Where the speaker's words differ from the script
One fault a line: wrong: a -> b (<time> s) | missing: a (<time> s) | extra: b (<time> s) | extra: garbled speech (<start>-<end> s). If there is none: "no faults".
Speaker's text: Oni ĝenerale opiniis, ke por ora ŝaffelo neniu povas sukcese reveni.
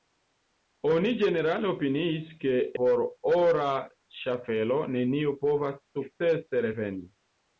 no faults